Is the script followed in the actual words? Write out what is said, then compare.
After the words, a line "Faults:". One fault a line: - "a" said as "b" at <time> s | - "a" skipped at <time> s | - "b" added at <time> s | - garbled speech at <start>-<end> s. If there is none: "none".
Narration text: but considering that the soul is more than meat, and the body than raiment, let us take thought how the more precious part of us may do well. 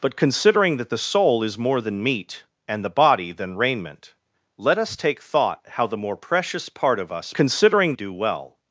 but considering that the soul is more than meat, and the body than raiment, let us take thought how the more precious part of us considering do well.
Faults:
- "may" said as "considering" at 7.3 s